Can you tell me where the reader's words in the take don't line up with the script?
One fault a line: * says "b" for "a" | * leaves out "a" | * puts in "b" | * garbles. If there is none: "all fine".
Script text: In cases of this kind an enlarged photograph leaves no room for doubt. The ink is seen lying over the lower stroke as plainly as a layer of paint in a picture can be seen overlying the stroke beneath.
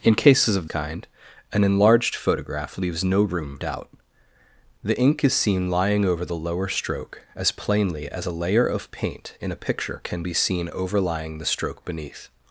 * leaves out "this"
* leaves out "for"